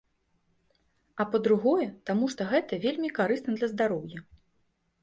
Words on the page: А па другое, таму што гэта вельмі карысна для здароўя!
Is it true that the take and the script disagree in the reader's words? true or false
false